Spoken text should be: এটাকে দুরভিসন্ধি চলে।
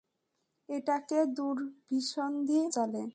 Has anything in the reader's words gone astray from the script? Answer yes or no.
no